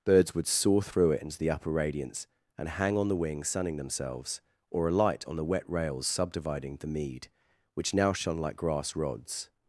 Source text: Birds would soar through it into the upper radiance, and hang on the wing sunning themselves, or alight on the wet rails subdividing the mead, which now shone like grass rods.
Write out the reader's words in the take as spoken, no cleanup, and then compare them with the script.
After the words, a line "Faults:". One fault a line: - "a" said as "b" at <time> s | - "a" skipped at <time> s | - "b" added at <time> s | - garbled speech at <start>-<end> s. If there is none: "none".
Birds would soar through it into the upper radiance, and hang on the wing sunning themselves, or alight on the wet rails subdividing the mead, which now shone like grass rods.
Faults:
none